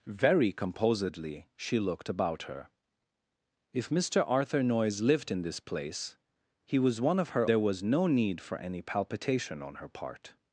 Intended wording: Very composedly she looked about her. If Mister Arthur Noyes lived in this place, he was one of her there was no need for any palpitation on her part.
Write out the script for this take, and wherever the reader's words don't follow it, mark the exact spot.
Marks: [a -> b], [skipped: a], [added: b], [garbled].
Very composedly she looked about her. If Mister Arthur Noyes lived in this place, he was one of her there was no need for any palpitation on her part.